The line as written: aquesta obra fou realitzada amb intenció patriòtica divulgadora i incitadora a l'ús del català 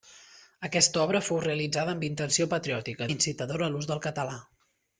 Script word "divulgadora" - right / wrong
wrong